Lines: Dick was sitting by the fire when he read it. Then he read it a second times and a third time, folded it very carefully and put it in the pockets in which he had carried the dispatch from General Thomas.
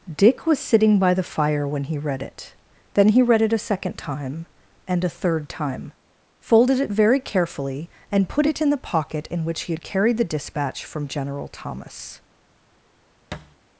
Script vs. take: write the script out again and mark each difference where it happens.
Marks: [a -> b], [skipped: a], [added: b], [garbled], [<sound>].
Dick was sitting by the fire when he read it. Then he read it a second [times -> time] and a third time, folded it very carefully and put it in the [pockets -> pocket] in which he had carried the dispatch from General Thomas. [thud]